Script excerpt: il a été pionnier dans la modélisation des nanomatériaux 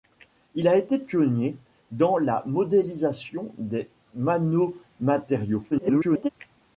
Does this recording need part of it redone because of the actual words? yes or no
yes